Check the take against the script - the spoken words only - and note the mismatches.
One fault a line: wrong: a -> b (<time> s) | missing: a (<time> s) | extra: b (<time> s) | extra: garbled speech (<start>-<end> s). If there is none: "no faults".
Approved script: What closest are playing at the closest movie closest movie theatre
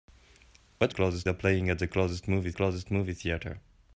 no faults